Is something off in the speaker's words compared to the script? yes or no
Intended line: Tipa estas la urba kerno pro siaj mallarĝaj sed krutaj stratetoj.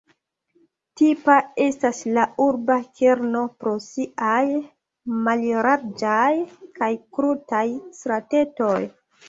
yes